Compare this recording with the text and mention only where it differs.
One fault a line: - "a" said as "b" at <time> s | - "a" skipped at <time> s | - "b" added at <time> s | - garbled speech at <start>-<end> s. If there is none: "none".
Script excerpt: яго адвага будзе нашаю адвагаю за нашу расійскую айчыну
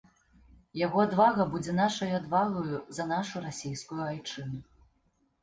none